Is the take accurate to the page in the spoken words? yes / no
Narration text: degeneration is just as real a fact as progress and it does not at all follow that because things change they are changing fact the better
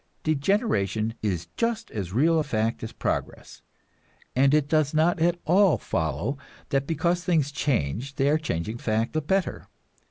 yes